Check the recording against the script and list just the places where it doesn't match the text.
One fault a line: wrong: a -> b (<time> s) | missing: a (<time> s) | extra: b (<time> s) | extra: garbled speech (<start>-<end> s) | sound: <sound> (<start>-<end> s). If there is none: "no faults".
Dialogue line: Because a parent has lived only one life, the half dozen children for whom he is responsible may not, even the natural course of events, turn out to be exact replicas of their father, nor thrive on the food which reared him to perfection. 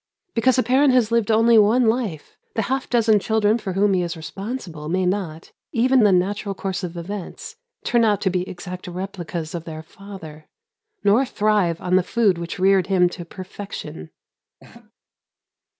sound: laugh (14.6-14.9 s)